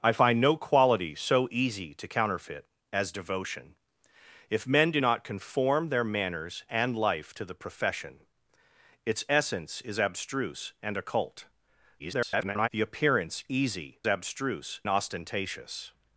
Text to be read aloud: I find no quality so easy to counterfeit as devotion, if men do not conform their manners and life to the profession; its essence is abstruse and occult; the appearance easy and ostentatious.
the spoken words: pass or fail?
fail